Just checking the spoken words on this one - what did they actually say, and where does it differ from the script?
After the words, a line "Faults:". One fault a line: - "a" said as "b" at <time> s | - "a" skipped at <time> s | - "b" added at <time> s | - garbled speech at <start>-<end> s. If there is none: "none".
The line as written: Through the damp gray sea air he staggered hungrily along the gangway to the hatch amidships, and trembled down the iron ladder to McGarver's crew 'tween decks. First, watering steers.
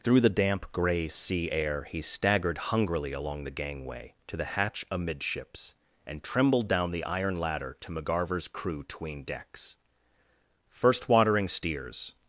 Through the damp gray sea air he staggered hungrily along the gangway to the hatch amidships, and trembled down the iron ladder to McGarver's crew 'tween decks. First, watering steers.
Faults:
none